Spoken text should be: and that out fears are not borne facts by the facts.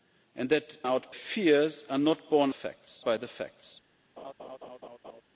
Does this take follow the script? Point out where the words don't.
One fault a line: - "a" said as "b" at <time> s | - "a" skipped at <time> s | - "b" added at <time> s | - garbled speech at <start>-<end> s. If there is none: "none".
none